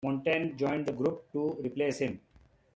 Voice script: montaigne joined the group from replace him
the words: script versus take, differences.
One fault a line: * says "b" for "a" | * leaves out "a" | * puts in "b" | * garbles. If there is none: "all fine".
* says "to" for "from"